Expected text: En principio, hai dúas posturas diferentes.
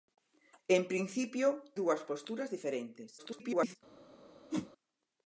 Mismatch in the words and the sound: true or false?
true